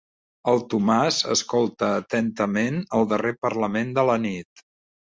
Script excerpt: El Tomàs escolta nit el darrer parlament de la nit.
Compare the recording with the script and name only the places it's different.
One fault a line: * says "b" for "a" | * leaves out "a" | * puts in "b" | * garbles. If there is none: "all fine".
* says "atentament" for "nit"